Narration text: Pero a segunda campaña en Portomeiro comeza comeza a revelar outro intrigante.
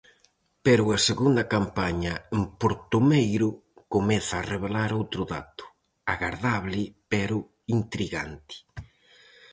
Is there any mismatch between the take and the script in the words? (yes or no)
yes